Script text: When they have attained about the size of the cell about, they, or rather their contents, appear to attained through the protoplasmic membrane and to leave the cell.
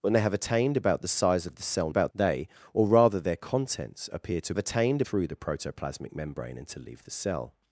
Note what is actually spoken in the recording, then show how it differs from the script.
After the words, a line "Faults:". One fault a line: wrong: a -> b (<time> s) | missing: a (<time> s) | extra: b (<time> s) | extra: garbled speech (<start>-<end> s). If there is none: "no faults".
When they have attained about the size of the cell about, they, or rather their contents, appear to attained through the protoplasmic membrane and to leave the cell.
Faults:
no faults